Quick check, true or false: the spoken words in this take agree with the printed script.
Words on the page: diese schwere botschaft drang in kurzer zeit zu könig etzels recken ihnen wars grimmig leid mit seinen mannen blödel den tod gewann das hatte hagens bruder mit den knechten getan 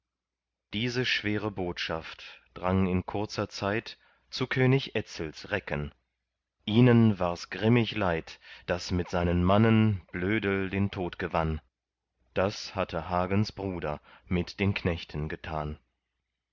false